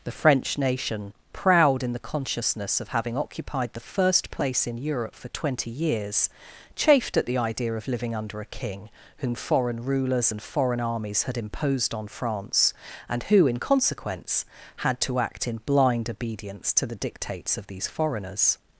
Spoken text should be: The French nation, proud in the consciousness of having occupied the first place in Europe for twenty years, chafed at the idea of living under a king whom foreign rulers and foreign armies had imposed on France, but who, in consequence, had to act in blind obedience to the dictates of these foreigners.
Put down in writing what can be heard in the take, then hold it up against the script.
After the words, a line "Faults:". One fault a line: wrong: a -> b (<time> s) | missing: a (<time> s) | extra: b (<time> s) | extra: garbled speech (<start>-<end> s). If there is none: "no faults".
The French nation, proud in the consciousness of having occupied the first place in Europe for twenty years, chafed at the idea of living under a king whom foreign rulers and foreign armies had imposed on France, and who, in consequence, had to act in blind obedience to the dictates of these foreigners.
Faults:
wrong: but -> and (13.1 s)